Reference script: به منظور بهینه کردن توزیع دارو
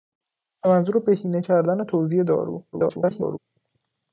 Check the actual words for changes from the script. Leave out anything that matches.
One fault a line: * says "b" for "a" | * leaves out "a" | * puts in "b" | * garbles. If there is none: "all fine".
* garbles